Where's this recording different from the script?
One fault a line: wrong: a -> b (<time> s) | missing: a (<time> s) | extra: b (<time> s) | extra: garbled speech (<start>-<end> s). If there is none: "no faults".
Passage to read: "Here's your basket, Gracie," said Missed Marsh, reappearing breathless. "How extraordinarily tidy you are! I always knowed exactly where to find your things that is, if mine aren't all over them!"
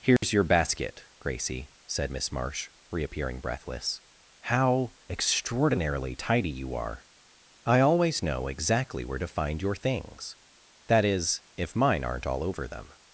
wrong: Missed -> Miss (2.1 s)
wrong: knowed -> know (8.2 s)